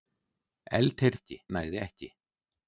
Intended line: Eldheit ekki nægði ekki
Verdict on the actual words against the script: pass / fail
pass